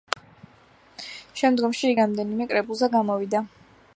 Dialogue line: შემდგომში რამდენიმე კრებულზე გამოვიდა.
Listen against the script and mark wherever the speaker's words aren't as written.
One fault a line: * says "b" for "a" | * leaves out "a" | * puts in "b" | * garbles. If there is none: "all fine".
all fine